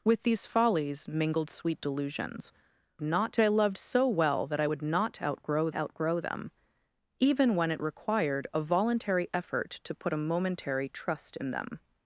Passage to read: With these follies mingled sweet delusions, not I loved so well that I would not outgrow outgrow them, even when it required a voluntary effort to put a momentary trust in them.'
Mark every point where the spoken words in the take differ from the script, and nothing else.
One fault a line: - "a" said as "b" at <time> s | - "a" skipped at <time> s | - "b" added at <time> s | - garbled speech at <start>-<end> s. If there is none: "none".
none